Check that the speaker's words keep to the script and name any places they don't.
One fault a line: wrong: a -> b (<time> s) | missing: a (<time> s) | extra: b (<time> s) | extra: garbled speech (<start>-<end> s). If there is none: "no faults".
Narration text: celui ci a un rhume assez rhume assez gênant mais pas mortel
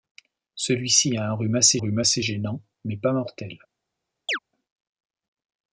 no faults